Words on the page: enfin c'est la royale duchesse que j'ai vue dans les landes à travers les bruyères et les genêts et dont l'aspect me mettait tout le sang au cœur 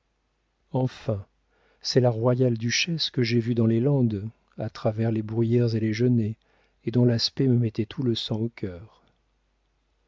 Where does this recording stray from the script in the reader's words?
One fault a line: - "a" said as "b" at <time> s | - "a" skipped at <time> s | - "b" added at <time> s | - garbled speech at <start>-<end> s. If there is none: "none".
none